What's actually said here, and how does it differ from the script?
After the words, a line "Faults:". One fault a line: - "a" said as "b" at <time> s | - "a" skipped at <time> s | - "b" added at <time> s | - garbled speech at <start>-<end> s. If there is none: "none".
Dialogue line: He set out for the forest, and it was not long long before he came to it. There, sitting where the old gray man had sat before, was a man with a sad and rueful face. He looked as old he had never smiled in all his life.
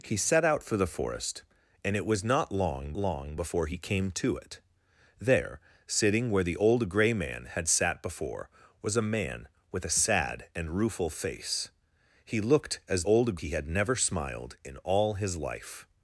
He set out for the forest, and it was not long long before he came to it. There, sitting where the old gray man had sat before, was a man with a sad and rueful face. He looked as old he had never smiled in all his life.
Faults:
none